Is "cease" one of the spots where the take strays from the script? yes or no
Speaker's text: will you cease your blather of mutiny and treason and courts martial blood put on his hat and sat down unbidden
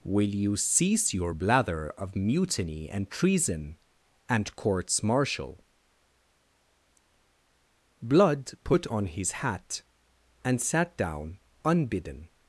no